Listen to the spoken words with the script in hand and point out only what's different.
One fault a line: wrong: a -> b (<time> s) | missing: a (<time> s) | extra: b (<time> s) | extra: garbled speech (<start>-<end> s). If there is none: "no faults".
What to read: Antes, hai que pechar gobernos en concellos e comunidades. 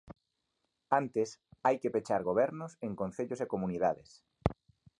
no faults